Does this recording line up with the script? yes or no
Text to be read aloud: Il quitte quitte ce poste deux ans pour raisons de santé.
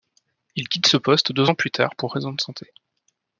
no